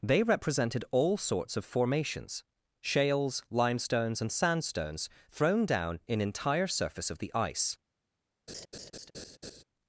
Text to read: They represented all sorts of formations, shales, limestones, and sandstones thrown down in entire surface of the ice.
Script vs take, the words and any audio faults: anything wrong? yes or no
yes